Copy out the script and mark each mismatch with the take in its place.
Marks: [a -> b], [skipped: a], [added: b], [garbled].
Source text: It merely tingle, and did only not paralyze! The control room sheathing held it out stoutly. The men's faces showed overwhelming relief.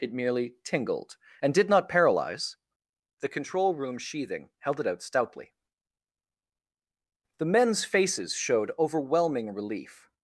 It merely [tingle, -> tingled] and did [skipped: only] not paralyze! The control room sheathing held it out stoutly. The men's faces showed overwhelming relief.